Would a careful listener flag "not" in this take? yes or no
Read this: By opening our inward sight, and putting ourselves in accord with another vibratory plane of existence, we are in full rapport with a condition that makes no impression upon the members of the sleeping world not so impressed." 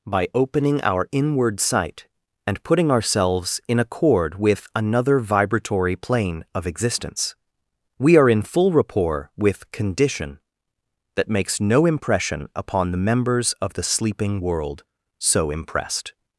yes